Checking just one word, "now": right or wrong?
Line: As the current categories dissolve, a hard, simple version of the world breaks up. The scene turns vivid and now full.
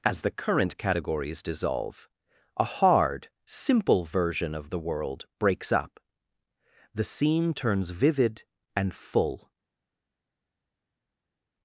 wrong